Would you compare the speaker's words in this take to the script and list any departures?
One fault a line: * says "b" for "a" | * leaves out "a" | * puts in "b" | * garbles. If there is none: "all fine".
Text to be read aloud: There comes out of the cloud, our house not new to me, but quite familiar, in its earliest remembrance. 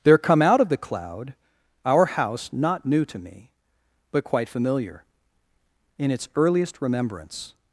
* says "come" for "comes"